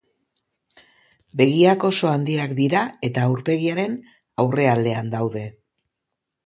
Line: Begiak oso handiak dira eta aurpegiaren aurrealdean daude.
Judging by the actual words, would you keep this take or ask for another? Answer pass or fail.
pass